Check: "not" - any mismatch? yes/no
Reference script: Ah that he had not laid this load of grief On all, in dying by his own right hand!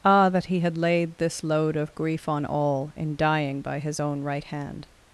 yes